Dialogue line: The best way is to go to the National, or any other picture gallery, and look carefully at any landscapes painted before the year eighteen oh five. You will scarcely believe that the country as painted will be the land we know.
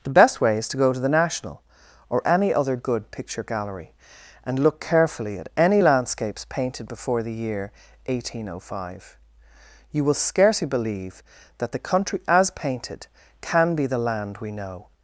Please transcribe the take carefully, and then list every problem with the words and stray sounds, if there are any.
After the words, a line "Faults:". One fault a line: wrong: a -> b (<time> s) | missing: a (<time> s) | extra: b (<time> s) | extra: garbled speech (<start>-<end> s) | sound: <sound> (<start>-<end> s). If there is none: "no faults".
The best way is to go to the National, or any other good picture gallery, and look carefully at any landscapes painted before the year eighteen oh five. You will scarcely believe that the country as painted can be the land we know.
Faults:
extra: good (2.8 s)
wrong: will -> can (13.4 s)